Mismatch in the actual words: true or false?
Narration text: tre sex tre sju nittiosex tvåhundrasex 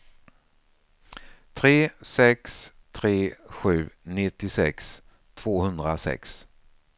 false